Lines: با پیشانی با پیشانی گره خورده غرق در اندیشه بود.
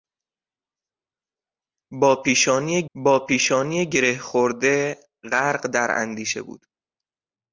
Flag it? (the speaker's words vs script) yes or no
no